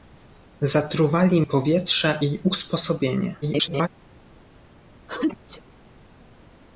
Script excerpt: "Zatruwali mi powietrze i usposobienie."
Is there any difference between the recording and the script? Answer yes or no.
yes